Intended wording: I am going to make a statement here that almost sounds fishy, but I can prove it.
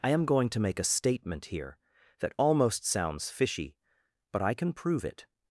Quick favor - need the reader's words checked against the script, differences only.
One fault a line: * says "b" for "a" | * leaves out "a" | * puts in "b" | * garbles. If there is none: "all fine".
all fine